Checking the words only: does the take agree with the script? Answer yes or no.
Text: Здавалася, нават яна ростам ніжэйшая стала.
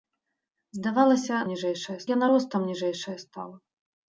no